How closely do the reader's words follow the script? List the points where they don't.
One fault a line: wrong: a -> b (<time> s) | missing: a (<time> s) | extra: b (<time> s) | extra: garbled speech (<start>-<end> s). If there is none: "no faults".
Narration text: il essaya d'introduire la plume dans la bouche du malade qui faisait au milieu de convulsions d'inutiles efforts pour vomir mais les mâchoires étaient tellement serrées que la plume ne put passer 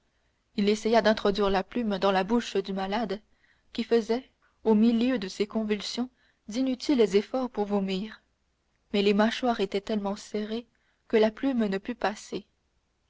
extra: ses (5.3 s)